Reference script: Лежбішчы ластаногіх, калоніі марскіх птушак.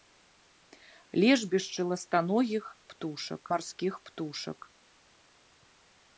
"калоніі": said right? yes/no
no